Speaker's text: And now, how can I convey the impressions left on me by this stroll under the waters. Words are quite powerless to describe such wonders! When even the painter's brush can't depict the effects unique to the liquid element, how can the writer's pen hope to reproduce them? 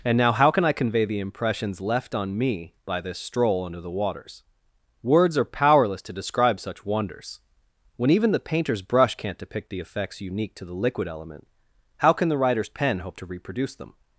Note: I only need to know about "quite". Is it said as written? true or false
false